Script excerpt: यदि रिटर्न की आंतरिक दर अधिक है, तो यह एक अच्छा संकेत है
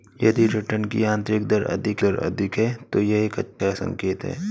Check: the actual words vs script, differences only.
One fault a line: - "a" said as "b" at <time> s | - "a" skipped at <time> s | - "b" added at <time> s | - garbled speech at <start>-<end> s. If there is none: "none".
- "दर अधिक" added at 2.0 s